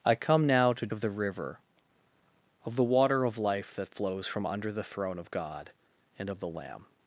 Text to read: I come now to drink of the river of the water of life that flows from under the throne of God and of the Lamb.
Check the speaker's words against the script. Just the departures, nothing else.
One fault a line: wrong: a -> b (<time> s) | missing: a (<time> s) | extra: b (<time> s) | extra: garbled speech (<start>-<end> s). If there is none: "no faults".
missing: drink (0.9 s)